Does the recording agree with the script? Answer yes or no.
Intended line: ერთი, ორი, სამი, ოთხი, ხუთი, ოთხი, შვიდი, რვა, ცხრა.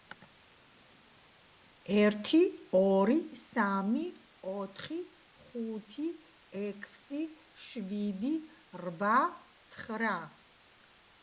no